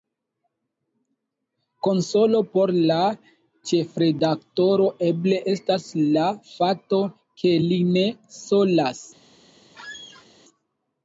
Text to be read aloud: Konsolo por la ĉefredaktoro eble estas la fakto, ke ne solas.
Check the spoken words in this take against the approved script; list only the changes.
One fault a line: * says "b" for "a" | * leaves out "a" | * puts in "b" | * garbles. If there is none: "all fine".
* puts in "li"